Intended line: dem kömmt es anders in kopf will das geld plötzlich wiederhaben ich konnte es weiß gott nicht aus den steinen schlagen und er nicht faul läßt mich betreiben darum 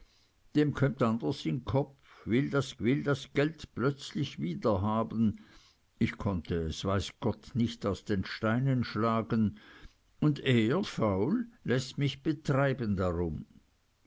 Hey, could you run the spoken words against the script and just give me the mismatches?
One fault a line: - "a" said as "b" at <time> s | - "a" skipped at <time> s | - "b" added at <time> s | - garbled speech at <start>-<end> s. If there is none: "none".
- "es" skipped at 1.0 s
- "will das" added at 2.8 s
- "nicht" skipped at 10.8 s